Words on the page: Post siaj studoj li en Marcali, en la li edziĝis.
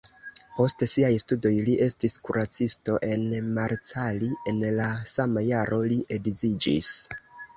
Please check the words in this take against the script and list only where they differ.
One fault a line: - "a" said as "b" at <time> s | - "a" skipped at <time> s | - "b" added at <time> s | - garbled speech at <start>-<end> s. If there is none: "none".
- "estis kuracisto" added at 1.9 s
- "sama jaro" added at 5.1 s